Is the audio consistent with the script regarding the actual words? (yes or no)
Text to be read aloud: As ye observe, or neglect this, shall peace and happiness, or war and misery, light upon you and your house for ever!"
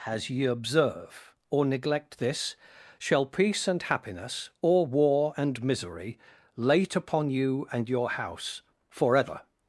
no